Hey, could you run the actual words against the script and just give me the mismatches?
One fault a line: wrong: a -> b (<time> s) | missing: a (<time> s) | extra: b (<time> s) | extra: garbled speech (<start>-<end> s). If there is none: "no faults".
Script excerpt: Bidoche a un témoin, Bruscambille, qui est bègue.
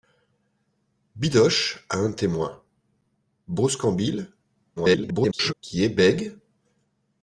extra: garbled speech (4.8-5.5 s)